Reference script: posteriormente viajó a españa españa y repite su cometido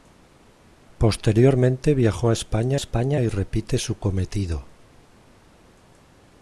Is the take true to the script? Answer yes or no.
yes